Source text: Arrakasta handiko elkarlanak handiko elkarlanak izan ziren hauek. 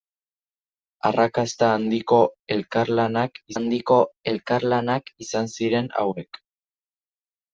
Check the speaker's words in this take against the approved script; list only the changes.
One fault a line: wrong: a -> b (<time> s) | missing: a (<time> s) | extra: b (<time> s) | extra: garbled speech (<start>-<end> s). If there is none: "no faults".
no faults